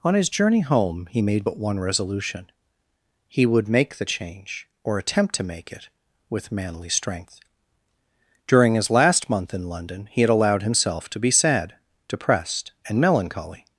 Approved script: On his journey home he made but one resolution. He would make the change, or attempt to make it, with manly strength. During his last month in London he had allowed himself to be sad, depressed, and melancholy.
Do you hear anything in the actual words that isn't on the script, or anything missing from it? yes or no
no